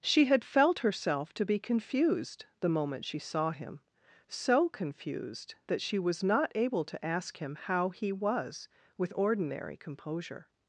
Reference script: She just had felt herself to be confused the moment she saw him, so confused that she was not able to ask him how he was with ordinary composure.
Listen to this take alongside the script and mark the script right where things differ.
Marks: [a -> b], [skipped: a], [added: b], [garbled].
She [skipped: just] had felt herself to be confused the moment she saw him, so confused that she was not able to ask him how he was with ordinary composure.